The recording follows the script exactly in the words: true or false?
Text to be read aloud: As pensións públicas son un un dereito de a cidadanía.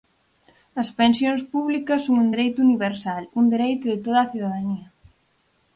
false